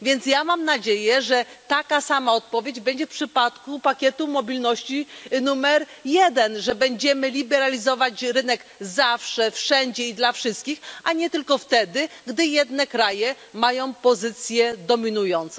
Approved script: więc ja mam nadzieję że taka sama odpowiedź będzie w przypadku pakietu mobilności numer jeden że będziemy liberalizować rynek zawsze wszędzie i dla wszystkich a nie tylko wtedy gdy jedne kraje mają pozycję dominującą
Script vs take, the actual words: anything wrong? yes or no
no